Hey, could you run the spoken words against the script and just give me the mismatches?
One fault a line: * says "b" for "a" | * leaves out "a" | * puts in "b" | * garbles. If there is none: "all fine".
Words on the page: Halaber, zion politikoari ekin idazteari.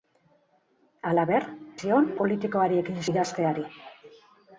all fine